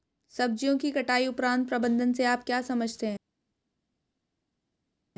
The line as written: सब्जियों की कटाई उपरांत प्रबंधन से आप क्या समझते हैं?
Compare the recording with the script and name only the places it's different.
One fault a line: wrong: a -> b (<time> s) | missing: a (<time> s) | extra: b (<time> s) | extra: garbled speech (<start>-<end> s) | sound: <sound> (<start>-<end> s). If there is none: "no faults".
no faults